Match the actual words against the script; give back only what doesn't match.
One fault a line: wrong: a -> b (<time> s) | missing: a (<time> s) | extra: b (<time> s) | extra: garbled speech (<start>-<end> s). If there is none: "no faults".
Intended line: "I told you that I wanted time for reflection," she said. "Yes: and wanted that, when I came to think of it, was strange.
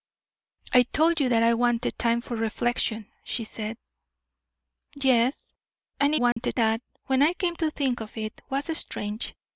no faults